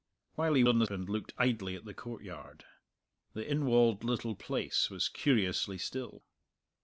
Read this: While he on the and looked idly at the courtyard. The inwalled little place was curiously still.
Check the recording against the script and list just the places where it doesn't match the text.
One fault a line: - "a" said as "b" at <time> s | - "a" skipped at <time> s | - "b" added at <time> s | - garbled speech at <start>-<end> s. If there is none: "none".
none